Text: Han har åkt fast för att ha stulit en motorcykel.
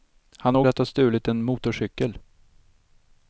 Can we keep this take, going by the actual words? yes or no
no